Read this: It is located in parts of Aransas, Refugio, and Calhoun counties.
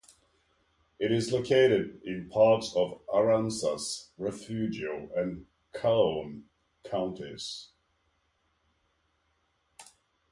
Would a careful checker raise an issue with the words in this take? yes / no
no